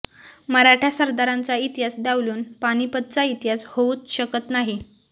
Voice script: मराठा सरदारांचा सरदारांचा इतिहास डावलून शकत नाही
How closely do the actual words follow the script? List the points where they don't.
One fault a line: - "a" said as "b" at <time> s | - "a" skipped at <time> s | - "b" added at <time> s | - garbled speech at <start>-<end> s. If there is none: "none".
- "सरदारांचा" said as "इतिहास डावलून पानिपतचा" at 1.6 s
- "डावलून" said as "होऊच" at 3.7 s